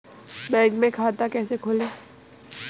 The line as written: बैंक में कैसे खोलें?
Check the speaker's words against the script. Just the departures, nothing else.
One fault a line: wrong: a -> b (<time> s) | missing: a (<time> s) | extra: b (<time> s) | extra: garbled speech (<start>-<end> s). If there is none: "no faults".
extra: खाता (0.9 s)